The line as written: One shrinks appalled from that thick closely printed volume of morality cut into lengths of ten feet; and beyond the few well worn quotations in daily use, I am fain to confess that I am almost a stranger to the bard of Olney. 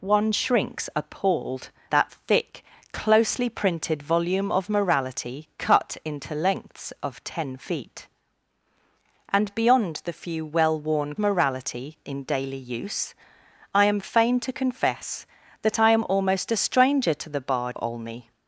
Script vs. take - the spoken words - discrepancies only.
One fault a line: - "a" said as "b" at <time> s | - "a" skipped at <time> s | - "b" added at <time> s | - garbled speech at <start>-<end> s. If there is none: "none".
- "from" skipped at 1.7 s
- "quotations" said as "morality" at 11.2 s
- "of" skipped at 17.8 s